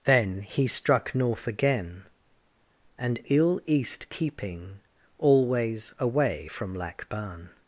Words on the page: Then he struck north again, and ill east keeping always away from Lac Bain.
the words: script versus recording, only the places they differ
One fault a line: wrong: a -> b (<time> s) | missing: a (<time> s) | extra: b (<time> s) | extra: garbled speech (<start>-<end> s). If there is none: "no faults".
no faults